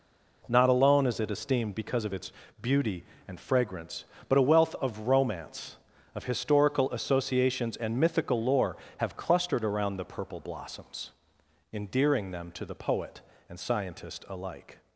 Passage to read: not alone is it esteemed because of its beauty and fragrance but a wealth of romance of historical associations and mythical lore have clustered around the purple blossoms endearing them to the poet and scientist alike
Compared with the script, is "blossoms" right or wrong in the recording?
right